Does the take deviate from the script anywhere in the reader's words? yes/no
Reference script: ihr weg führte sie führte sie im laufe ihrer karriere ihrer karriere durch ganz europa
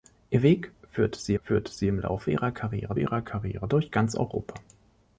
no